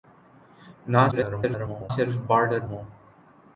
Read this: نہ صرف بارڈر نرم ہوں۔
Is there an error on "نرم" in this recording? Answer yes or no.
yes